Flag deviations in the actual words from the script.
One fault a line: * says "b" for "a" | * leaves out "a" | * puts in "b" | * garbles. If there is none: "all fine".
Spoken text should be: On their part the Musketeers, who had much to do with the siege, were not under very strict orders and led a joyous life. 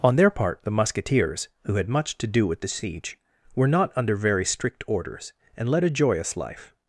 all fine